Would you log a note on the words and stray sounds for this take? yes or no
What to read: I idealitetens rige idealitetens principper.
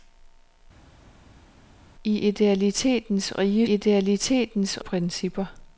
no